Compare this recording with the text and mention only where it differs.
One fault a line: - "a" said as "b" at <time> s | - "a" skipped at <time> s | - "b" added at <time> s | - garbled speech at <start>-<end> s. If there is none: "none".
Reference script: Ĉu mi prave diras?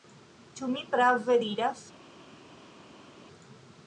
none